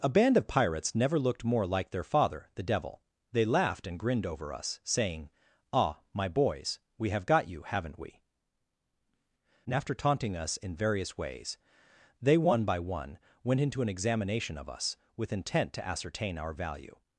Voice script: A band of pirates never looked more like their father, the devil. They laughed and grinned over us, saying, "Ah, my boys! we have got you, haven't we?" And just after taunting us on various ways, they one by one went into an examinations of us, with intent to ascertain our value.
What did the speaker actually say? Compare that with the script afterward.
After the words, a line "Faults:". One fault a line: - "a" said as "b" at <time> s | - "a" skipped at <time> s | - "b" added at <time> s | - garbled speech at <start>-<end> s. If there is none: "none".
A band of pirates never looked more like their father, the devil. They laughed and grinned over us, saying, "Ah, my boys! we have got you, haven't we?" And after taunting us in various ways, they one by one went into an examination of us, with intent to ascertain our value.
Faults:
- "just" skipped at 9.8 s
- "on" said as "in" at 10.6 s
- "examinations" said as "examination" at 13.9 s